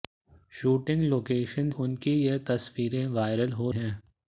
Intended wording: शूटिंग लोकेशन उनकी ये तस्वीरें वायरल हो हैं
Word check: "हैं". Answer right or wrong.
right